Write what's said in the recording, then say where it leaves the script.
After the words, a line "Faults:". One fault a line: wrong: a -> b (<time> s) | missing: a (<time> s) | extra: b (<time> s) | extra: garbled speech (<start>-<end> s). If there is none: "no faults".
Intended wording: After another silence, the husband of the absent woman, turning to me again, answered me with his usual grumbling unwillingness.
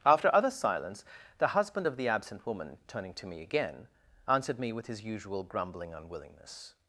After other silence, the husband of the absent woman, turning to me again, answered me with his usual grumbling unwillingness.
Faults:
wrong: another -> other (0.3 s)